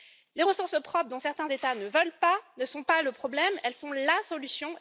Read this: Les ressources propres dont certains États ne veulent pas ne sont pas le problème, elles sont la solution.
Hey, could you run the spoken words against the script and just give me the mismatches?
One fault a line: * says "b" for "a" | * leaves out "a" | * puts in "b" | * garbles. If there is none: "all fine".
all fine